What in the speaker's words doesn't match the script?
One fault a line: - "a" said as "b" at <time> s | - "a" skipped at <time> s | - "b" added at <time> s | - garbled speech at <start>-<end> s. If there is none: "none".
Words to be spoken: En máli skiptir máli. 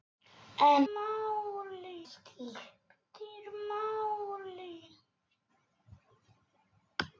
none